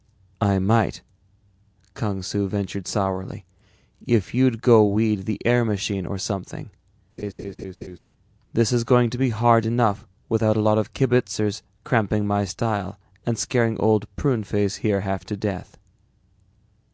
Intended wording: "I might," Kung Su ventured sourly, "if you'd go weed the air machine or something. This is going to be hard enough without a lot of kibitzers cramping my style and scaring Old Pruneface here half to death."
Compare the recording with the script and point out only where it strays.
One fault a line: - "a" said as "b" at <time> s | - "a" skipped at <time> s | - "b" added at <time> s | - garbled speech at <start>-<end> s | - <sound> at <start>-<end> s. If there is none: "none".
- laugh at 7.2-8.0 s